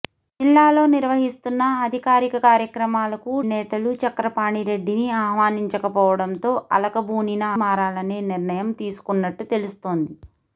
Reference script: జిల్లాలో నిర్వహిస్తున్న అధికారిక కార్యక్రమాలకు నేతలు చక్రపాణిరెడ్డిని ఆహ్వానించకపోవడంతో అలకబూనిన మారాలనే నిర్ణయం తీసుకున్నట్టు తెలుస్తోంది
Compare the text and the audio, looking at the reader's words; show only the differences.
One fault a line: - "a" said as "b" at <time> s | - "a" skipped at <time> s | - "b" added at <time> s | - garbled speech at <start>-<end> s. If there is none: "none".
none